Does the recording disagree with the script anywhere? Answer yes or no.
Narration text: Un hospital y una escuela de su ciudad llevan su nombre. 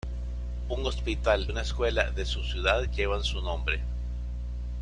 yes